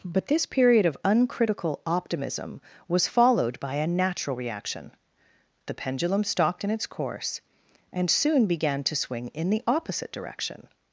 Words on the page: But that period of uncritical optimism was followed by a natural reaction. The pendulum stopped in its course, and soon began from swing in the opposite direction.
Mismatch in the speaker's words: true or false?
true